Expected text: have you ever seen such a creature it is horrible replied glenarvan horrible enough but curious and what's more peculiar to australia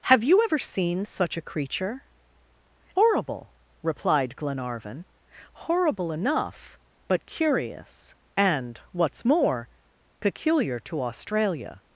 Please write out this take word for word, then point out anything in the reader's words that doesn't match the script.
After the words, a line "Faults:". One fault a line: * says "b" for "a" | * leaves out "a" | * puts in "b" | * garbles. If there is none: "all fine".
have you ever seen such a creature horrible replied glenarvan horrible enough but curious and what's more peculiar to australia
Faults:
* leaves out "it is"